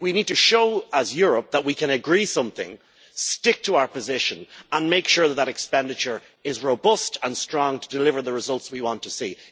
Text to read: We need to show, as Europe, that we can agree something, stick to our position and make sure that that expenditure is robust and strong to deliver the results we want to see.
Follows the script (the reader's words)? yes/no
yes